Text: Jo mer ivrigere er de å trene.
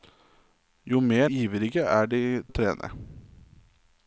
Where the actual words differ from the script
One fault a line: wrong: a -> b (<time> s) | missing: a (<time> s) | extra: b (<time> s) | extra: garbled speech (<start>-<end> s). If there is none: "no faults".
no faults